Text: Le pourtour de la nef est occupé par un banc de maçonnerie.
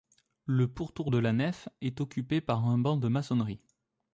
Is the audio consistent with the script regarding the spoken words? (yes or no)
yes